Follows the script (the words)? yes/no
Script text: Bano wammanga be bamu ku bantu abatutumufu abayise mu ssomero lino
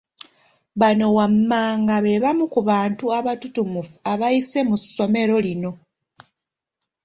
yes